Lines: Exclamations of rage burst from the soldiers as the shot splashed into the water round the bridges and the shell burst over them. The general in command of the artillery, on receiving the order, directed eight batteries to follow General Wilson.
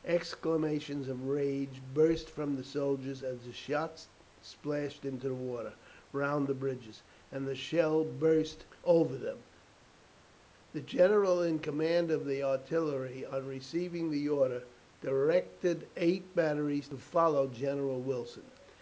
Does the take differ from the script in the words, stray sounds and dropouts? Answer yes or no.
no